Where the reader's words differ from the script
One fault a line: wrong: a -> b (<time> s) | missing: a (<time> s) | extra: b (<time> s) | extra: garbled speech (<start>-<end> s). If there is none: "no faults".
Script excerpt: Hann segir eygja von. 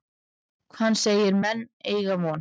extra: menn (1.4 s)